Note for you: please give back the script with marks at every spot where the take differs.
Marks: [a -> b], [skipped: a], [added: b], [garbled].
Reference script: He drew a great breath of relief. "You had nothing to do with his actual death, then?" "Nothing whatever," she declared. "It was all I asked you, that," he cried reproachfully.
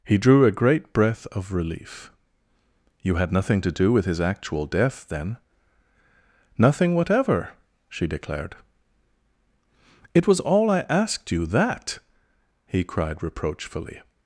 He drew a great breath of relief. "You had nothing to do with his actual death, then?" "Nothing whatever," she declared. "It was all I asked you, that," he cried reproachfully.